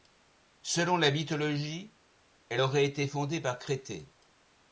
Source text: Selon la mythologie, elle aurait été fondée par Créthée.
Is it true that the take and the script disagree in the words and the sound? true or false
false